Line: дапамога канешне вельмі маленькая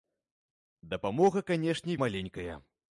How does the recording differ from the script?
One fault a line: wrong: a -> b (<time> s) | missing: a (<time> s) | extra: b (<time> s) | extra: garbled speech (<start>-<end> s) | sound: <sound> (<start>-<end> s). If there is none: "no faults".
missing: вельмі (2.0 s)